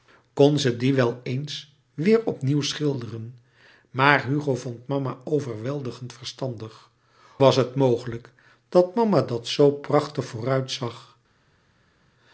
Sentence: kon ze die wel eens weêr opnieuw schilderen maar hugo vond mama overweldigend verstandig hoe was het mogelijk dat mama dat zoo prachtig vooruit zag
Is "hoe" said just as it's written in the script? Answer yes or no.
no